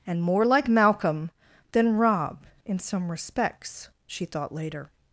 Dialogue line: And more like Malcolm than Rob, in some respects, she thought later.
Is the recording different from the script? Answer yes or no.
no